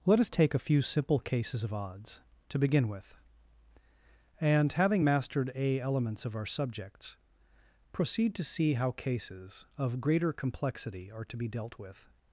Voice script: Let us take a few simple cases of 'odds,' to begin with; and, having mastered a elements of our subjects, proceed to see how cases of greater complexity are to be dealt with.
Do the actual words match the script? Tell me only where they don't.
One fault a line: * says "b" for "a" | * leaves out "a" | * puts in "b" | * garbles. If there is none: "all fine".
all fine